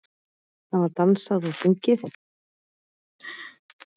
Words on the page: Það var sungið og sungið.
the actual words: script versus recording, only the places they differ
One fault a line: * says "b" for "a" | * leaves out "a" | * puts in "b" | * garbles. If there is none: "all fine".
* says "dansað" for "sungið"